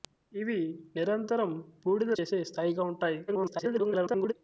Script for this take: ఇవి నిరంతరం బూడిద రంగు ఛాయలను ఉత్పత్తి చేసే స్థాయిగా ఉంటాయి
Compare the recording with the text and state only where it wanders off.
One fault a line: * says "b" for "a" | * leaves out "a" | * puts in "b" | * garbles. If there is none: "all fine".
* leaves out "రంగు ఛాయలను ఉత్పత్తి"
* garbles